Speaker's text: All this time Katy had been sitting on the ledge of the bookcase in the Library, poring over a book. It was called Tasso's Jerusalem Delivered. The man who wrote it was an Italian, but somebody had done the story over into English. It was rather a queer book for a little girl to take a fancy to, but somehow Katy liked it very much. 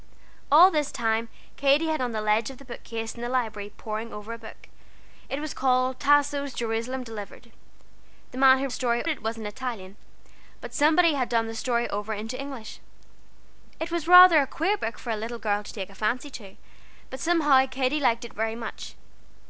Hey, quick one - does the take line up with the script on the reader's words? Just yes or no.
no